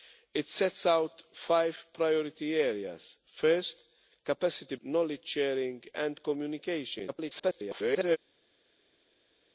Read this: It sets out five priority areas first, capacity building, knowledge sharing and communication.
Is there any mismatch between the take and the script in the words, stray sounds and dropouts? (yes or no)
yes